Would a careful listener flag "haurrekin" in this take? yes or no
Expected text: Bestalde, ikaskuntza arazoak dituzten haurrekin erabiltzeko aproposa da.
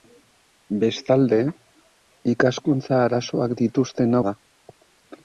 yes